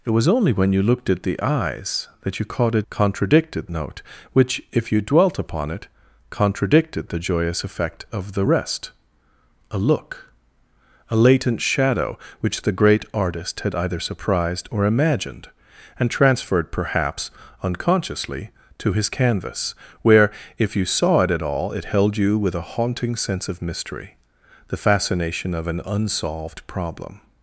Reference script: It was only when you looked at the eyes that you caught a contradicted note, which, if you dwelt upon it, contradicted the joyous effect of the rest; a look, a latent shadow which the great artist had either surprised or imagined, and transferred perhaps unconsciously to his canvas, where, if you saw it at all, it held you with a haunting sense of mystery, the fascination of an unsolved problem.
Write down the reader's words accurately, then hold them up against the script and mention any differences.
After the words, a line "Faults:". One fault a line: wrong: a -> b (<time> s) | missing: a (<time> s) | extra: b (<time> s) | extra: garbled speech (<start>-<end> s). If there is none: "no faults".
It was only when you looked at the eyes that you caught a contradicted note, which, if you dwelt upon it, contradicted the joyous effect of the rest; a look, a latent shadow which the great artist had either surprised or imagined, and transferred perhaps unconsciously to his canvas, where, if you saw it at all, it held you with a haunting sense of mystery, the fascination of an unsolved problem.
Faults:
no faults